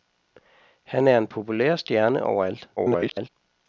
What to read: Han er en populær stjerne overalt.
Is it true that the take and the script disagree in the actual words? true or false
true